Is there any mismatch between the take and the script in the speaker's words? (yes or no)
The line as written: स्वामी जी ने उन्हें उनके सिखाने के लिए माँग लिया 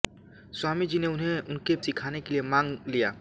no